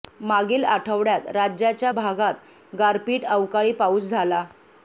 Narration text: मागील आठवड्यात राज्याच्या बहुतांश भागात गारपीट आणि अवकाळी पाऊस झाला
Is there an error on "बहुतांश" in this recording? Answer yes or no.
yes